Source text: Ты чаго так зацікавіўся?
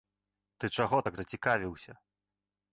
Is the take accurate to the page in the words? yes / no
yes